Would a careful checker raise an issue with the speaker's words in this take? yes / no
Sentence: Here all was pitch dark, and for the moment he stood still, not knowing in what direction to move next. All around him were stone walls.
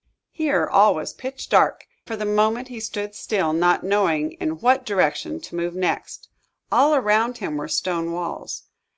yes